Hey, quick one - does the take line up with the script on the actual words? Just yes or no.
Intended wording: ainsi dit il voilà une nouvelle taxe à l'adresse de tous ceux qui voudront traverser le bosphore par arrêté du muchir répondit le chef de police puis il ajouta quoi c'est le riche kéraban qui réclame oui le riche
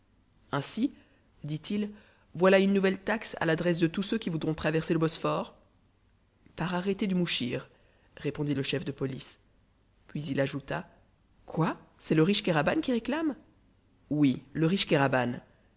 yes